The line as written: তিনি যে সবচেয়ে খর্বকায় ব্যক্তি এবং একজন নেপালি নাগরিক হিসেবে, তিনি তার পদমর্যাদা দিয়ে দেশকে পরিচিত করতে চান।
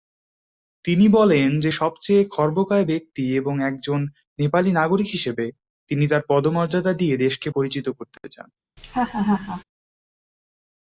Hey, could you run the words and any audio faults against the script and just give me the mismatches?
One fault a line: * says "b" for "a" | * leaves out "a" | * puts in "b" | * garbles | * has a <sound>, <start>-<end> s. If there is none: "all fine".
* puts in "বলেন"
* has a laugh, 8.8-9.6 s